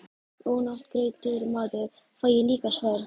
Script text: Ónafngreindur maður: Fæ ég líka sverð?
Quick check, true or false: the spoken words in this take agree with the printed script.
true